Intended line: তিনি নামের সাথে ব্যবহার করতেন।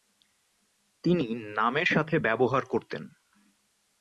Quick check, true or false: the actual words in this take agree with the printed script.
true